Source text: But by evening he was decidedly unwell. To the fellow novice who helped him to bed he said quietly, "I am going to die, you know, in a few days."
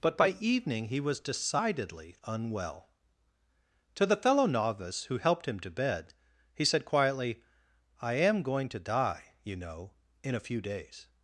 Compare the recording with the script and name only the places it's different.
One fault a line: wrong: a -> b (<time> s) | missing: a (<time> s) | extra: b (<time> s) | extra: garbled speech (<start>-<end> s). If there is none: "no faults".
no faults